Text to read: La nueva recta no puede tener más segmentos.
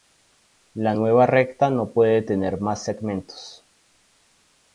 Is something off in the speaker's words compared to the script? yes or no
no